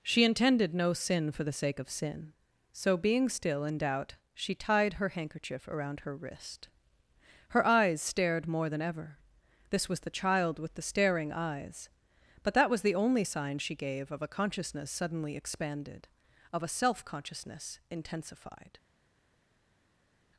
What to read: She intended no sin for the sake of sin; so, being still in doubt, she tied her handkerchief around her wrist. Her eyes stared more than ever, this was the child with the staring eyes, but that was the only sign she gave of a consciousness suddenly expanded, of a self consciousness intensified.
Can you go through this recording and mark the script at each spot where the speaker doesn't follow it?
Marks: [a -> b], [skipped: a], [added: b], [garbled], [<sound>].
She intended no sin for the sake of sin; so, being still in doubt, she tied her handkerchief around her wrist. Her eyes stared more than ever, this was the child with the staring eyes, but that was the only sign she gave of a consciousness suddenly expanded, of a self consciousness intensified.